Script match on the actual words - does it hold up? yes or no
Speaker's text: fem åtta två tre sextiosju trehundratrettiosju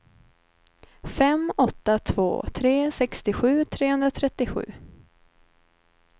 yes